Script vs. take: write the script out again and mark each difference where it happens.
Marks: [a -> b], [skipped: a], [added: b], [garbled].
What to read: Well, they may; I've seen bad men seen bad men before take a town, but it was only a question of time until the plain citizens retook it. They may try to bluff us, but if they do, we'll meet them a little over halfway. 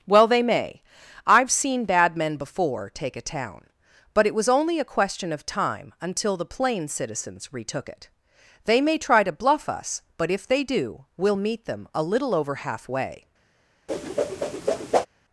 Well, they may; I've seen bad men [skipped: seen bad men] before take a town, but it was only a question of time until the plain citizens retook it. They may try to bluff us, but if they do, we'll meet them a little over halfway.